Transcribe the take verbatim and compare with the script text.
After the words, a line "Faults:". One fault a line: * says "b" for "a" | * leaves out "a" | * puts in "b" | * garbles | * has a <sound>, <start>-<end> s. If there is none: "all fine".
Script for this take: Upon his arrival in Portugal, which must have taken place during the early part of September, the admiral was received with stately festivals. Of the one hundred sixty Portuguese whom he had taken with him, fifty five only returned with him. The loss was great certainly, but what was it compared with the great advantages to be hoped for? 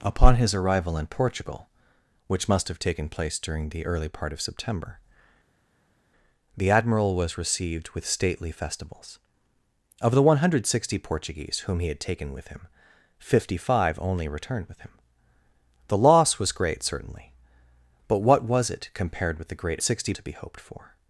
Upon his arrival in Portugal, which must have taken place during the early part of September, the admiral was received with stately festivals. Of the one hundred sixty Portuguese whom he had taken with him, fifty five only returned with him. The loss was great certainly, but what was it compared with the great sixty to be hoped for?
Faults:
* says "sixty" for "advantages"